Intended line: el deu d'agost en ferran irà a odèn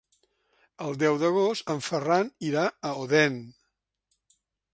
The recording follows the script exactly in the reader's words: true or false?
true